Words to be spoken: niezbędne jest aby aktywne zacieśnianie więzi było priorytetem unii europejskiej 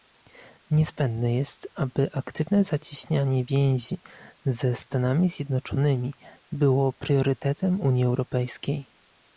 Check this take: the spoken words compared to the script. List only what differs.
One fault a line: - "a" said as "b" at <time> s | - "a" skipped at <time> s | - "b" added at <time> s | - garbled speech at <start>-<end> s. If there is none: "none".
- "ze stanami zjednoczonymi" added at 4.4 s